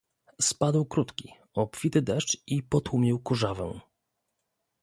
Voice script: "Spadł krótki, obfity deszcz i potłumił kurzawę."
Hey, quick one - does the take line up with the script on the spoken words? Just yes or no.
yes